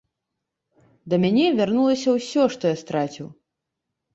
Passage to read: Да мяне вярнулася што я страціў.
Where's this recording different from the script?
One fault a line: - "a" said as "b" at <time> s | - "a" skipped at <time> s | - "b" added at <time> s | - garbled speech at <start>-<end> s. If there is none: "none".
- "ўсё" added at 2.2 s